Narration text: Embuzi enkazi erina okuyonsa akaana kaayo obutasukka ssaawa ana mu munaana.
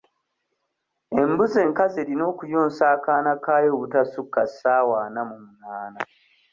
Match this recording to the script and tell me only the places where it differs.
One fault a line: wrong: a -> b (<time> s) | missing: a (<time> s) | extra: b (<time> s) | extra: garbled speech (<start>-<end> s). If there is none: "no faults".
no faults